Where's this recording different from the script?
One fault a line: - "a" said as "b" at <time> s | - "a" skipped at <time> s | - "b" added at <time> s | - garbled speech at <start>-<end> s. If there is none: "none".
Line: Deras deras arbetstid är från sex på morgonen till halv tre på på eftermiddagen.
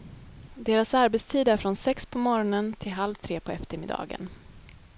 - "deras" skipped at 0.9 s
- "på" skipped at 3.5 s